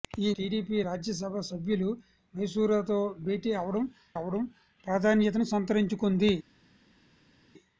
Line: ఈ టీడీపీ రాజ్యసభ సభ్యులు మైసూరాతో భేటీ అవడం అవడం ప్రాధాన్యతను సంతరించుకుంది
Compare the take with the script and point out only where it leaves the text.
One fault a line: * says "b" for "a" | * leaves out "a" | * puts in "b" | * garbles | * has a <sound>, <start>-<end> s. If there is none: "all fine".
all fine